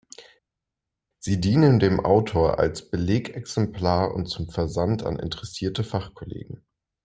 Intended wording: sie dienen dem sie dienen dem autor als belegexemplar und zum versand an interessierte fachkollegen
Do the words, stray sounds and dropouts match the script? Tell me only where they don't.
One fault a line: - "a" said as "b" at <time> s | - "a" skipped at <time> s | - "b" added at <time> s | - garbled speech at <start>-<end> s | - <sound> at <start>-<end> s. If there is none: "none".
- "sie dienen dem" skipped at 2.0 s